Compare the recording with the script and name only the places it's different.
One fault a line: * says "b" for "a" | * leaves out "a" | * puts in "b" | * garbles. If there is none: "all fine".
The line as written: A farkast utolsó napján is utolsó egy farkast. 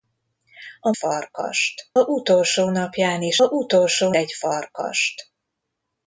all fine